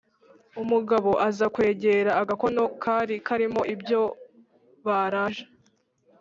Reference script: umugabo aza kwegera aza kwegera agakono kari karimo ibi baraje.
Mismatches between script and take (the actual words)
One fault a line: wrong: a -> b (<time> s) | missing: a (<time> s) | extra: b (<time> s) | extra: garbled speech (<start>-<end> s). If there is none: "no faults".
missing: aza kwegera (2.1 s)
wrong: ibi -> ibyo (3.7 s)